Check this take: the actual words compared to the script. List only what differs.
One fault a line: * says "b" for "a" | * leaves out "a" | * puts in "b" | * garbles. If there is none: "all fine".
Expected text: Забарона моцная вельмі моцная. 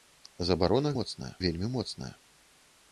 all fine